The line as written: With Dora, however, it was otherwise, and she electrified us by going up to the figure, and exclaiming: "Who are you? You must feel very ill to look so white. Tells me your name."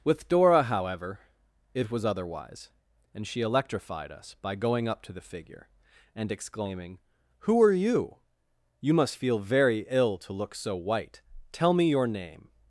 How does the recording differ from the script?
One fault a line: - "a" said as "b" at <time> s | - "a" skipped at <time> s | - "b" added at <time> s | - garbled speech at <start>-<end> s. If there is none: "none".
- "Tells" said as "Tell" at 11.5 s